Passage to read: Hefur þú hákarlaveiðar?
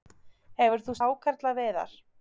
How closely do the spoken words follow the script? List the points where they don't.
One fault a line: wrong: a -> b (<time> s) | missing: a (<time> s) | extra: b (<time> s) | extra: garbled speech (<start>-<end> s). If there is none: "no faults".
no faults